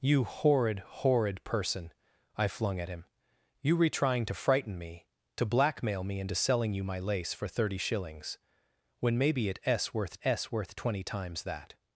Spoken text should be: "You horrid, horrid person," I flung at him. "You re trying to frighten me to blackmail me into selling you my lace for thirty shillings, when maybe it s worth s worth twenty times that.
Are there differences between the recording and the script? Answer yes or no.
no